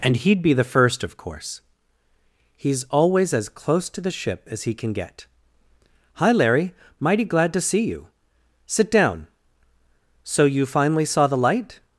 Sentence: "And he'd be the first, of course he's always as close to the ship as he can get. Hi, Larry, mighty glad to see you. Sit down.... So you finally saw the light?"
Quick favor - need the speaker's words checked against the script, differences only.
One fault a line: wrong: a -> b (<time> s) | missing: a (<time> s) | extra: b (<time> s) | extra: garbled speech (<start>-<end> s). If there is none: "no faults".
no faults